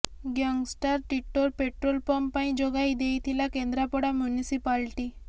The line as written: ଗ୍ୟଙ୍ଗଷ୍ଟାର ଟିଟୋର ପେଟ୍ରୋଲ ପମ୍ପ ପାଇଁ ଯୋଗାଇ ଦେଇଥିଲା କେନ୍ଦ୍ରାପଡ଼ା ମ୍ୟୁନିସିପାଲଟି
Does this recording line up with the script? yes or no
yes